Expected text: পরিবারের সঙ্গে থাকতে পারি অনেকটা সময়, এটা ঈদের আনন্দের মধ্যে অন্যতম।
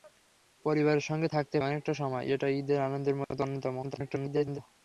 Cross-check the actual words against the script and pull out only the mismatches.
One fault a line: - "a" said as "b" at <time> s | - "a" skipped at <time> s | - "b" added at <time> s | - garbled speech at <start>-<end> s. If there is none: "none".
- "পারি" skipped at 1.6 s
- garbled speech at 3.8-4.6 s